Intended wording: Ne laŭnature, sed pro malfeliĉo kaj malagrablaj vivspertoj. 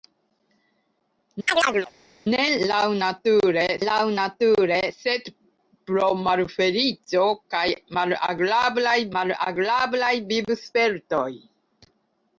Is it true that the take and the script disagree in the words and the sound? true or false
true